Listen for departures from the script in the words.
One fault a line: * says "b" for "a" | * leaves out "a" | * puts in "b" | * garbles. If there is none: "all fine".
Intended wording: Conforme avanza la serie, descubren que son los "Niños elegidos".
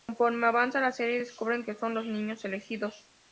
all fine